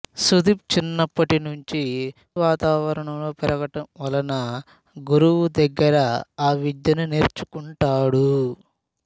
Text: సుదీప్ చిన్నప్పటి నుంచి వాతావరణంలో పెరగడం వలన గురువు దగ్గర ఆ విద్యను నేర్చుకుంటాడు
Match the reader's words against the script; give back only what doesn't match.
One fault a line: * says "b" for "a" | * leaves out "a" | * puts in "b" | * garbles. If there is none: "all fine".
all fine